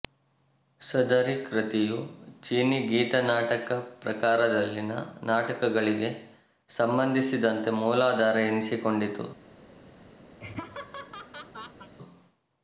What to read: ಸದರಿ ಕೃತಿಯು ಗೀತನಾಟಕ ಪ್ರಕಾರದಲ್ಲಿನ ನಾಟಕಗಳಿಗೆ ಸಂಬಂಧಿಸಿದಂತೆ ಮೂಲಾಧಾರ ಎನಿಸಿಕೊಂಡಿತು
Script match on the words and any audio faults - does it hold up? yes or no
no